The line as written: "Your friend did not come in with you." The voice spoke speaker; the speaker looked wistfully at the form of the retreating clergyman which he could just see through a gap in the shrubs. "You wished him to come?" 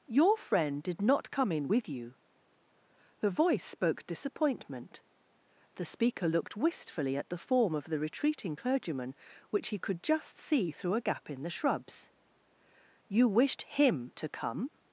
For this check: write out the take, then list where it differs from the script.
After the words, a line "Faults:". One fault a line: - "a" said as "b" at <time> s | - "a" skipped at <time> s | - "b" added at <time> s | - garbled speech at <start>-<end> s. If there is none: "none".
"Your friend did not come in with you." The voice spoke disappointment; the speaker looked wistfully at the form of the retreating clergyman which he could just see through a gap in the shrubs. "You wished him to come?"
Faults:
- "speaker" said as "disappointment" at 4.1 s